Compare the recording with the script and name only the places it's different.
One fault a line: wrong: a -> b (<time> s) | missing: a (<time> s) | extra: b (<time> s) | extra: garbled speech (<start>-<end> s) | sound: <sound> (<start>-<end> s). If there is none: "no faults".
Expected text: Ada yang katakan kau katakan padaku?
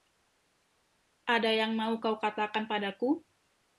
wrong: katakan -> mau (1.7 s)